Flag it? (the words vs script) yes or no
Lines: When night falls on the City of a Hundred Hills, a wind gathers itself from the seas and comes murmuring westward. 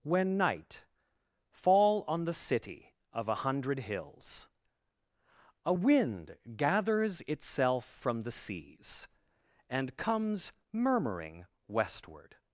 yes